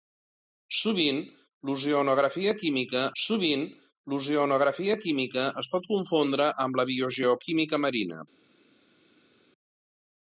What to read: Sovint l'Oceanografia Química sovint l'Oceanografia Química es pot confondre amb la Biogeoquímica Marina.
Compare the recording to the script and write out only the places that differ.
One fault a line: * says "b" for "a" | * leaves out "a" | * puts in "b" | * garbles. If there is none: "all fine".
all fine